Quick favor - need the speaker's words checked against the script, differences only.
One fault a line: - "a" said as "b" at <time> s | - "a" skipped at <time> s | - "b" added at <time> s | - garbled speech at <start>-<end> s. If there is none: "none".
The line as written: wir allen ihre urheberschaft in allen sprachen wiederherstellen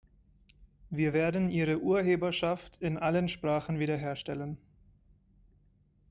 - "allen" said as "werden" at 1.1 s